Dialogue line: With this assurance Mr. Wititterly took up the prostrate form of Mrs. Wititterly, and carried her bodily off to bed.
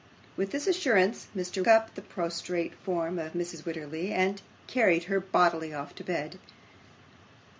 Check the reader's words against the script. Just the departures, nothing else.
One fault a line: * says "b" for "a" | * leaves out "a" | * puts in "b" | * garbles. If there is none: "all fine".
* leaves out "Wititterly took"